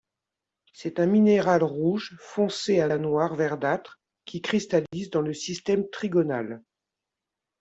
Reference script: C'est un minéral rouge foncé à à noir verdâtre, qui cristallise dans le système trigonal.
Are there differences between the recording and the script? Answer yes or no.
no